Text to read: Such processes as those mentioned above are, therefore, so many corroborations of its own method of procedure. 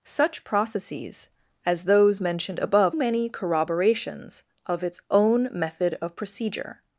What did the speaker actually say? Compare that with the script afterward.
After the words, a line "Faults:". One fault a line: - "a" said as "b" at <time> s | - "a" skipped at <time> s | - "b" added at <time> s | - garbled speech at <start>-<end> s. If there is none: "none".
Such processes as those mentioned above many corroborations of its own method of procedure.
Faults:
- "are therefore so" skipped at 3.0 s